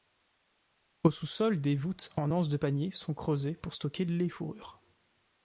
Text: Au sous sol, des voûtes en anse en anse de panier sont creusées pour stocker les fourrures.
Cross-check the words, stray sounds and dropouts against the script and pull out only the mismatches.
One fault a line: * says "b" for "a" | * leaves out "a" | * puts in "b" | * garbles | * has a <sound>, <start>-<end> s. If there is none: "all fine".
* leaves out "en anse"